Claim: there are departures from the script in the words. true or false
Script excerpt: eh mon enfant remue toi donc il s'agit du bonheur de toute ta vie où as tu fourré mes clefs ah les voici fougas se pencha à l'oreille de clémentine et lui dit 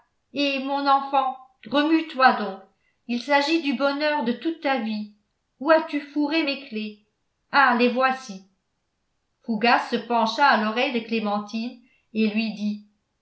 false